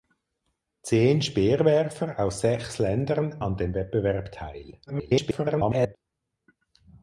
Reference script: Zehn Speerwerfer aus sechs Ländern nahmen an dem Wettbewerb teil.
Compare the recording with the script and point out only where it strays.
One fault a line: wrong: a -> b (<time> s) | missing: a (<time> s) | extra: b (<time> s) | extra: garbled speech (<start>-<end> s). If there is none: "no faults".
missing: nahmen (3.4 s)
extra: garbled speech (4.9-6.0 s)